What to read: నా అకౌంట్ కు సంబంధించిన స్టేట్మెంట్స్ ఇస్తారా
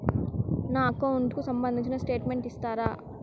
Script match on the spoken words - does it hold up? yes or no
yes